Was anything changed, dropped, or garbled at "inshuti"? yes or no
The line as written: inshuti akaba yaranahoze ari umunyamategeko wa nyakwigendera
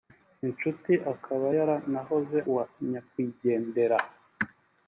no